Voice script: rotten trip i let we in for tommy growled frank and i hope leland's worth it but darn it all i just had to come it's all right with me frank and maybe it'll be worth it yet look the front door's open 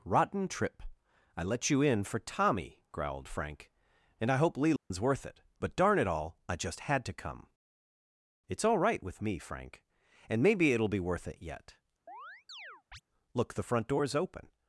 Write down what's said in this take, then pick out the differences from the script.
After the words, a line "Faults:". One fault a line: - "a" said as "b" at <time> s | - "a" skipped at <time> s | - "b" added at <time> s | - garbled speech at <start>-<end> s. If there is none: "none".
rotten trip i let you in for tommy growled frank and i hope leland's worth it but darn it all i just had to come it's all right with me frank and maybe it'll be worth it yet look the front door's open
Faults:
- "we" said as "you" at 1.7 s